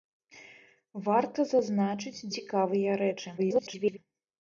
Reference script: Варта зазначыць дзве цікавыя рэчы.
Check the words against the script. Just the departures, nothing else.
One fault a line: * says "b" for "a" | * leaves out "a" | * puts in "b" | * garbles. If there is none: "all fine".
* leaves out "дзве"
* garbles